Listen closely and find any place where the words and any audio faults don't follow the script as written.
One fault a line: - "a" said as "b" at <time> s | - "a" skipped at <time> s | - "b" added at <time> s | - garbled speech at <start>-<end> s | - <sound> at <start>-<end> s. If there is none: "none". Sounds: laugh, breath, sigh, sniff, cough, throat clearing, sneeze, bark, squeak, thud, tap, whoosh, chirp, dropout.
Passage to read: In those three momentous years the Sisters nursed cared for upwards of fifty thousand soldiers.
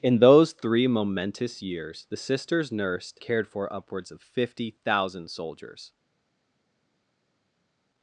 none